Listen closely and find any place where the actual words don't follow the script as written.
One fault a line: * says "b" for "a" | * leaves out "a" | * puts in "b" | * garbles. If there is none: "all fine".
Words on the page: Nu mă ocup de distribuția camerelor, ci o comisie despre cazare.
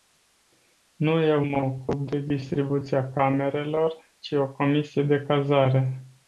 * puts in "eu"
* says "de" for "despre"